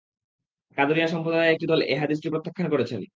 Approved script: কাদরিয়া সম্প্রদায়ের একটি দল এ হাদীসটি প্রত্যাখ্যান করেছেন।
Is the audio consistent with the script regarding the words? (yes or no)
yes